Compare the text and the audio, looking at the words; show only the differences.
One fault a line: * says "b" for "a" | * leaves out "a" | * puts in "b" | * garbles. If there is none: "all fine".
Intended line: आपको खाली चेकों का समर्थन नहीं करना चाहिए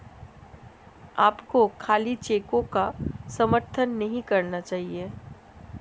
all fine